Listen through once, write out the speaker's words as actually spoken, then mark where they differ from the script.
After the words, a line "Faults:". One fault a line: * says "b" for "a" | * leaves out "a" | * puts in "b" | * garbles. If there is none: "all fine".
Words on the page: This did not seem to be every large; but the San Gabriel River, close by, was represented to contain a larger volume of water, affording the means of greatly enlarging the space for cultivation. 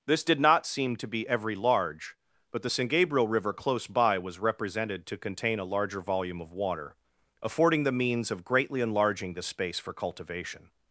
This did not seem to be every large; but the San Gabriel River, close by, was represented to contain a larger volume of water, affording the means of greatly enlarging the space for cultivation.
Faults:
all fine